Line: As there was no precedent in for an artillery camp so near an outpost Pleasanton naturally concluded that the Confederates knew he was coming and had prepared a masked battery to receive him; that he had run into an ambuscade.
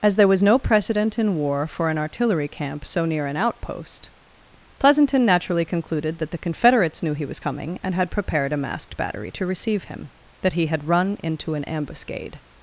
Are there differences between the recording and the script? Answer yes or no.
yes